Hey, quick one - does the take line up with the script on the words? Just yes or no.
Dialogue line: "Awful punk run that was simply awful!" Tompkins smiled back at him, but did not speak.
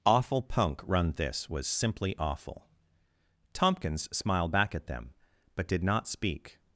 no